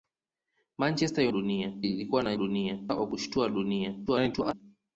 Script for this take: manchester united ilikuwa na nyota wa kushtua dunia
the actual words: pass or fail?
fail